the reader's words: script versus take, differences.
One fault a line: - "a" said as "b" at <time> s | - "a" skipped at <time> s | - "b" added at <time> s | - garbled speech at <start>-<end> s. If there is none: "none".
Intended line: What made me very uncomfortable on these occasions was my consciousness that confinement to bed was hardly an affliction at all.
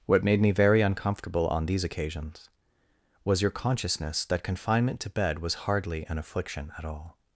- "my" said as "your" at 3.4 s